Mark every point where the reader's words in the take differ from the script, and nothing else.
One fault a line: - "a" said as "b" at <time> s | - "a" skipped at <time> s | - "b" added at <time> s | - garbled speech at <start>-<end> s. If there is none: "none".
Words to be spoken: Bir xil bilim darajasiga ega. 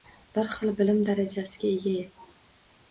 none